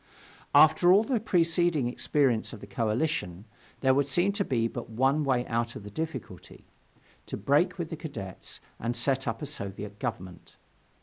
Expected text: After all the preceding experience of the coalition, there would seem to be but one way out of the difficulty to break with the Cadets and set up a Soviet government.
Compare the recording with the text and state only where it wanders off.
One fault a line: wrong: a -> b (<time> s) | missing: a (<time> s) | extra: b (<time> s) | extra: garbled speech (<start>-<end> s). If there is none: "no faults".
no faults